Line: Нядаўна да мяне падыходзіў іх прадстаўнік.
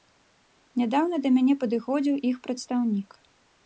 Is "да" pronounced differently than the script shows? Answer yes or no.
no